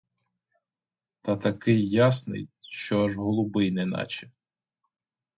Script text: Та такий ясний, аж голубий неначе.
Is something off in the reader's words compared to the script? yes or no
yes